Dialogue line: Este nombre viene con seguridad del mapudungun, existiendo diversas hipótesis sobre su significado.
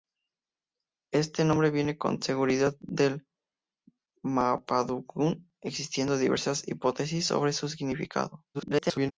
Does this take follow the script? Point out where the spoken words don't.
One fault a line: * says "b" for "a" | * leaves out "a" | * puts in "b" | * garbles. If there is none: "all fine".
* garbles